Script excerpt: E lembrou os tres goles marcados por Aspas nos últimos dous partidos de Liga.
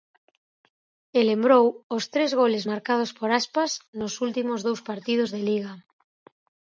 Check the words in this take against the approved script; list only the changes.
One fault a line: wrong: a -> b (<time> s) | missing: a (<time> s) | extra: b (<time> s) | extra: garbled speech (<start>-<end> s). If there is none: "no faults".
no faults